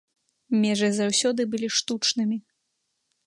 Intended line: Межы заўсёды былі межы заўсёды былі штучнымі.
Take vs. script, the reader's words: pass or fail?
fail